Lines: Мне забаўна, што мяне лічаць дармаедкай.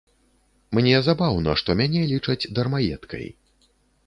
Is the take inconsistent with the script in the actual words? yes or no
no